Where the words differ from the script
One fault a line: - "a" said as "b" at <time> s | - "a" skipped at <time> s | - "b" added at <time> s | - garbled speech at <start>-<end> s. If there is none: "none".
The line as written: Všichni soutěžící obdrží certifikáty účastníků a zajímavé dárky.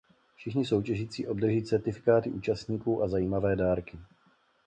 none